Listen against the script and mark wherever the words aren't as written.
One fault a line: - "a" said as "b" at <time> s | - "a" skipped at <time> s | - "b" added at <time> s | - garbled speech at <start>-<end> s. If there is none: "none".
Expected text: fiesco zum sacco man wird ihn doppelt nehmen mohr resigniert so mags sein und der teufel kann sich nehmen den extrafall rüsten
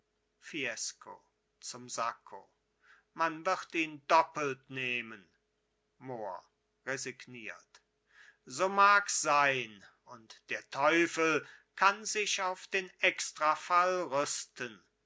- "nehmen" said as "auf" at 12.4 s